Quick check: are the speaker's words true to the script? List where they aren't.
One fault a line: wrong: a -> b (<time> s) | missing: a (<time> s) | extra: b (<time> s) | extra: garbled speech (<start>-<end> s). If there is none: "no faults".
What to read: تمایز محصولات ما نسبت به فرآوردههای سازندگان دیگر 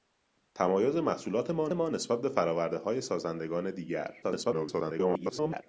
extra: ما (1.7 s)
extra: garbled speech (4.2-5.6 s)